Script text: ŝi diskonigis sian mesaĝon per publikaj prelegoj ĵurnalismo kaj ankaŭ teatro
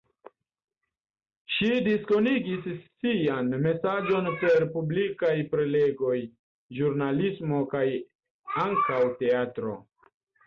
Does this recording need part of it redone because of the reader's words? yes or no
no